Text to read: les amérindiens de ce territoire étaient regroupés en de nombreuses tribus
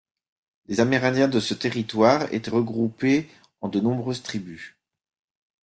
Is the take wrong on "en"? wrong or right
right